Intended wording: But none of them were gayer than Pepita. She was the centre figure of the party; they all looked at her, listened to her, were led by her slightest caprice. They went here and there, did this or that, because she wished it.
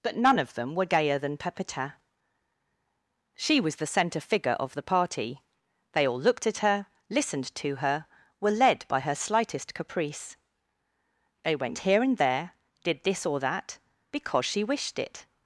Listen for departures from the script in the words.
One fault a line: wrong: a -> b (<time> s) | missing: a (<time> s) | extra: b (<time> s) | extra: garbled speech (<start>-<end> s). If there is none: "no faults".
no faults